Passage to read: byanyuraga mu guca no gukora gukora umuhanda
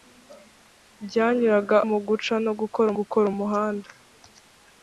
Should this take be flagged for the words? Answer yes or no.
no